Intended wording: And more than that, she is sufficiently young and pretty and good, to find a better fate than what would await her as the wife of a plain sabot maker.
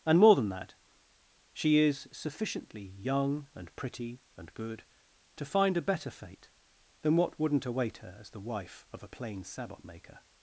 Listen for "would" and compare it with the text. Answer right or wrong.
wrong